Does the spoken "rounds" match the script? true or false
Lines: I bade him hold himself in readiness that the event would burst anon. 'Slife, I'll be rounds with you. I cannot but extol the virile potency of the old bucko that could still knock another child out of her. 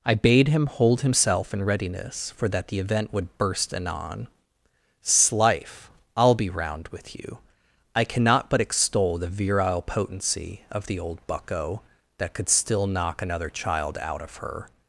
false